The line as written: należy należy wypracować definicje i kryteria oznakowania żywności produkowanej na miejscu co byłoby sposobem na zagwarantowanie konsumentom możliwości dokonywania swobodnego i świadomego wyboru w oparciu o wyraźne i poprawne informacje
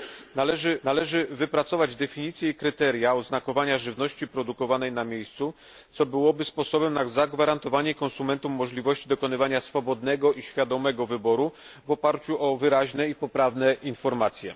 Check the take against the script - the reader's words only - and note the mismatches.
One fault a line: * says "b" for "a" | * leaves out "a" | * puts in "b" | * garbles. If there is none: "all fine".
all fine